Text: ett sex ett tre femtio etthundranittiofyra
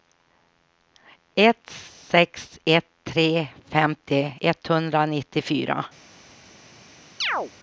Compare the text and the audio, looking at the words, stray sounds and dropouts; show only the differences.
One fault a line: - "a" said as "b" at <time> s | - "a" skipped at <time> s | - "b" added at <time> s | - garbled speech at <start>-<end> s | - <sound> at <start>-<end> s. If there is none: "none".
- chirp at 7.2-7.5 s